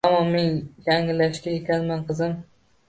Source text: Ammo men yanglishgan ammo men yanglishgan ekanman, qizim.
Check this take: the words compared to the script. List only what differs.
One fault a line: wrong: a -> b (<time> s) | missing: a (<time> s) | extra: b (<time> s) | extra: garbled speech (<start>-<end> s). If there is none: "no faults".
missing: ammo men yanglishgan (1.6 s)